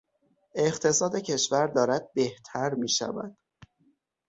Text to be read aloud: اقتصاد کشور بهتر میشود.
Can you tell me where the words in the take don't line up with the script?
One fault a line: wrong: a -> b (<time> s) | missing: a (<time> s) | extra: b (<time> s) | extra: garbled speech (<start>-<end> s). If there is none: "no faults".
extra: دارد (1.7 s)